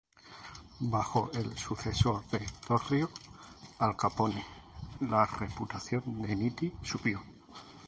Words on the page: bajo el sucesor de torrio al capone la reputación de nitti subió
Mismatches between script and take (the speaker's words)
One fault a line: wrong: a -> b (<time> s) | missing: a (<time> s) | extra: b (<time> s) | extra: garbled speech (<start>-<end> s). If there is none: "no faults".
no faults